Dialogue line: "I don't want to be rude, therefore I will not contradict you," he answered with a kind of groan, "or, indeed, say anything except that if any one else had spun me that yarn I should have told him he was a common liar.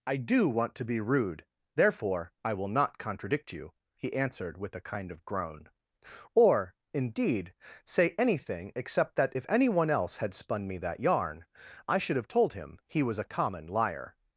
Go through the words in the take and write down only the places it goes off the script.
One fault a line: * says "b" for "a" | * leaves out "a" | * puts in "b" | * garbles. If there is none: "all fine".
* says "do" for "don't"